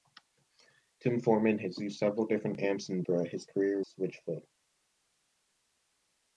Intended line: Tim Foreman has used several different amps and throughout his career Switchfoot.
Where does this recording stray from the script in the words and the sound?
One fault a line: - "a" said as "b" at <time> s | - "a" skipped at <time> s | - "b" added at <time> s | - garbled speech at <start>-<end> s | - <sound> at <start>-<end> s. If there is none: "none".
none